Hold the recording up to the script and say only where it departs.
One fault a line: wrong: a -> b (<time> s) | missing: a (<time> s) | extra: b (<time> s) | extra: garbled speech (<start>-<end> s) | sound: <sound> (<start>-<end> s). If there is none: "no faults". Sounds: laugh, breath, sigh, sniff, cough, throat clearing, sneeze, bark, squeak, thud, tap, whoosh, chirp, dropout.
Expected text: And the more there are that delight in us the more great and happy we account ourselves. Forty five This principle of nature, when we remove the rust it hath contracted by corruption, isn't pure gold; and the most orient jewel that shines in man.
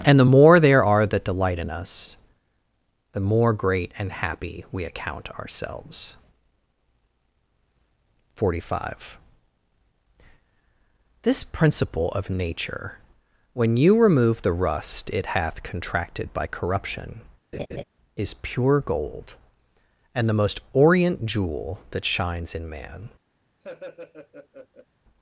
wrong: we -> you (13.8 s)
sound: laugh (17.5-17.8 s)
wrong: isn't -> is (18.2 s)
sound: laugh (23.6-24.9 s)